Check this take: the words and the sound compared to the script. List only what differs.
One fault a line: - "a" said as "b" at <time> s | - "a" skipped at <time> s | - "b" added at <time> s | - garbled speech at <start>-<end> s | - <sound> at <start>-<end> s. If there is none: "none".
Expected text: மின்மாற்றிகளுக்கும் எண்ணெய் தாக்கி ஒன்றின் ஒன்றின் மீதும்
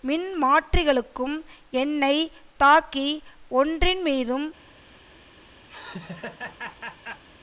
- "ஒன்றின்" skipped at 4.0 s
- laugh at 5.7-7.2 s